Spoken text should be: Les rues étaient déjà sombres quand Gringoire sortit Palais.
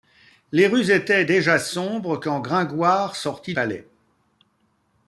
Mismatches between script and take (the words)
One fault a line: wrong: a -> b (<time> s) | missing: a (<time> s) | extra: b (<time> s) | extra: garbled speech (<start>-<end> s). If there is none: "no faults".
no faults